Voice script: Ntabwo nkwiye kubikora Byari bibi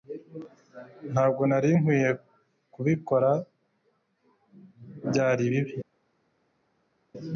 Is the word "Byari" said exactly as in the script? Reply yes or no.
yes